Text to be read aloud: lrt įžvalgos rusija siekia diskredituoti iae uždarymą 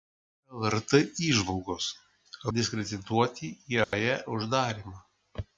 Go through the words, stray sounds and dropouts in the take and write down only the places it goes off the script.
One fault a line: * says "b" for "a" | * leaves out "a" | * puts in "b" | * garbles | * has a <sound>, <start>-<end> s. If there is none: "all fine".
* leaves out "rusija siekia"
* has a dropout, 3.8-3.9 s